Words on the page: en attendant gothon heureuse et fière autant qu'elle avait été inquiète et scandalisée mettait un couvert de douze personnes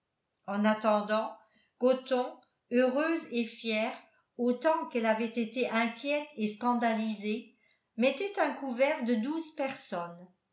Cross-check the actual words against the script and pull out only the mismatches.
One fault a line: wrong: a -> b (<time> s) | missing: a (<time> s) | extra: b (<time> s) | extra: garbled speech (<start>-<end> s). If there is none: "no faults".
no faults